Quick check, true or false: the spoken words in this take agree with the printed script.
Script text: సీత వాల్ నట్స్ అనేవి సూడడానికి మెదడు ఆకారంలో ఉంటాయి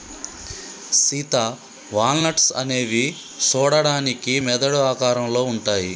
true